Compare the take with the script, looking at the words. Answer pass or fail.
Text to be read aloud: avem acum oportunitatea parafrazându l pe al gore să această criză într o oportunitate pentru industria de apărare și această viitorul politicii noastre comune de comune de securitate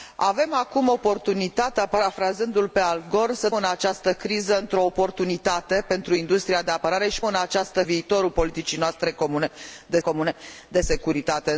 pass